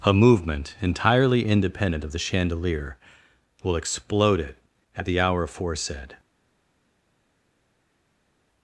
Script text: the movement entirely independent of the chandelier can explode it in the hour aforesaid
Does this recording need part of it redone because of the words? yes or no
yes